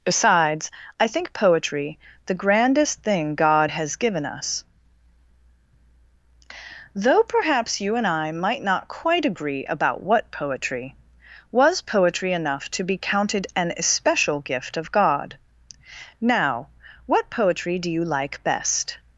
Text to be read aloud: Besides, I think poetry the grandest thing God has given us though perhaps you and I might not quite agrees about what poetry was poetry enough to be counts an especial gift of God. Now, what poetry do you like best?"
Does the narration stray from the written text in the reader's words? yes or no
yes